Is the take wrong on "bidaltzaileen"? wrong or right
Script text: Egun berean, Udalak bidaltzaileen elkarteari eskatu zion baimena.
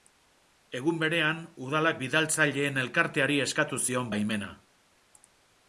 right